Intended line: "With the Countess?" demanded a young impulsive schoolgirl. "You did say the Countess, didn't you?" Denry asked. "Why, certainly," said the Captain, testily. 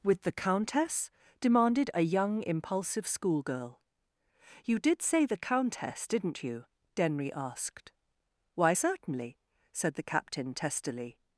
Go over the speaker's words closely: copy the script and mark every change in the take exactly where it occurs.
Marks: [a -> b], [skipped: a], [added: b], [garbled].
"With the Countess?" demanded a young impulsive schoolgirl. "You did say the Countess, didn't you?" Denry asked. "Why, certainly," said the Captain, testily.